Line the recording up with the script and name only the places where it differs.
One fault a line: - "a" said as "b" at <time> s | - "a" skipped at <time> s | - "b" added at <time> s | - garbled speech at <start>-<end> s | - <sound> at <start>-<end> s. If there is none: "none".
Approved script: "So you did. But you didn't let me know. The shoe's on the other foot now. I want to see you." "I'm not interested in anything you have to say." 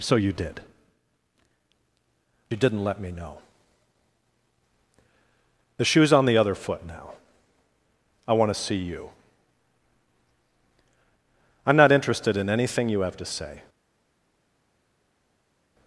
- "But" skipped at 0.6 s